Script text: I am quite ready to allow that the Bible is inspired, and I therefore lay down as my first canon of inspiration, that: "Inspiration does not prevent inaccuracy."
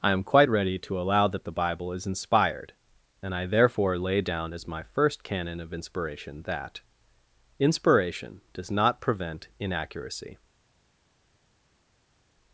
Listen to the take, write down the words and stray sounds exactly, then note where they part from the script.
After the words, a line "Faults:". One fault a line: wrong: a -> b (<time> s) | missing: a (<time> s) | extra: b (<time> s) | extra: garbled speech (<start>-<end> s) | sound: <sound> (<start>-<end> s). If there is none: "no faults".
I am quite ready to allow that the Bible is inspired, and I therefore lay down as my first canon of inspiration, that: "Inspiration does not prevent inaccuracy."
Faults:
no faults